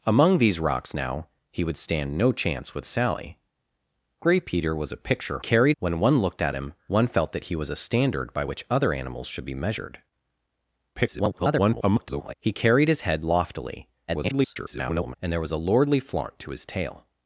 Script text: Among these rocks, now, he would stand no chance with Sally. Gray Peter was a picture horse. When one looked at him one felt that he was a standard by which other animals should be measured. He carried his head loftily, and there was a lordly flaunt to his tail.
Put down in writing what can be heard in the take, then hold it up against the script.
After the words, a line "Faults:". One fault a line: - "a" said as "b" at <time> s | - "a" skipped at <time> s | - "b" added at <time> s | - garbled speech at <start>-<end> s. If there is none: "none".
Among these rocks, now, he would stand no chance with Sally. Gray Peter was a picture carried. When one looked at him one felt that he was a standard by which other animals should be measured. [garbled] He carried his head loftily, [garbled] and there was a lordly flaunt to his tail.
Faults:
- "horse" said as "carried" at 5.4 s
- garbled speech at 10.9-12.3 s
- garbled speech at 14.1-15.1 s